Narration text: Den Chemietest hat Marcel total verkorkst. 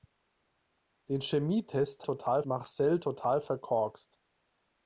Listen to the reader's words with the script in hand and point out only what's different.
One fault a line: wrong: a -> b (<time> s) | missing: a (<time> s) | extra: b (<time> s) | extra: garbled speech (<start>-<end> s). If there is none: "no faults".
wrong: hat -> total (2.0 s)